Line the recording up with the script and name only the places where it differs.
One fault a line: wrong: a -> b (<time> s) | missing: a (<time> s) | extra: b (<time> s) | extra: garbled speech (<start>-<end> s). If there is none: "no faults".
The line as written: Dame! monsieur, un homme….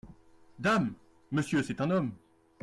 extra: c'est (1.6 s)